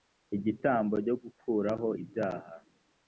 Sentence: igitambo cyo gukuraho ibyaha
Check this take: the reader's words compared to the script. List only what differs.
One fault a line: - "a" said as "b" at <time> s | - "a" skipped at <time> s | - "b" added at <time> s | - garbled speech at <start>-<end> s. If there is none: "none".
none